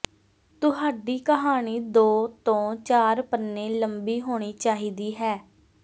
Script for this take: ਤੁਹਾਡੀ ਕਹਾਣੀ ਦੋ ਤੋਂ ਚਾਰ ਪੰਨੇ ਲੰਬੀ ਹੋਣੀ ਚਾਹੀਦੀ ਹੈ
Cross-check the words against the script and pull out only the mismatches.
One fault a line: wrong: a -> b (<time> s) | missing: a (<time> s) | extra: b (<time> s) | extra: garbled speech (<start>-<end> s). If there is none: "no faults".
no faults